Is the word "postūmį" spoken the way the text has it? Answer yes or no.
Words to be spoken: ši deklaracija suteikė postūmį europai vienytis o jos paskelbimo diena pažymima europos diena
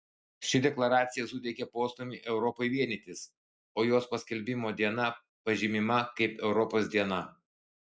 yes